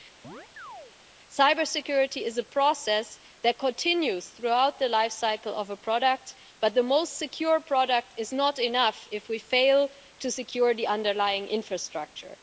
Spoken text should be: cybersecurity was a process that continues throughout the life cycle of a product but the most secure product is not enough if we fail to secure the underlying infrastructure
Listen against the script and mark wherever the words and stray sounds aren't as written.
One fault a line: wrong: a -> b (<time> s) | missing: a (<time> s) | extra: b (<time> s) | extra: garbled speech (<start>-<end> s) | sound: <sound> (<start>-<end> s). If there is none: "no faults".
sound: chirp (0.2-0.9 s)
wrong: was -> is (2.2 s)